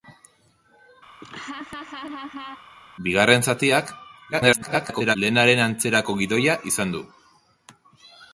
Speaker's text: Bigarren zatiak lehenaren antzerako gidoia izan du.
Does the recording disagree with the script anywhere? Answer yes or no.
yes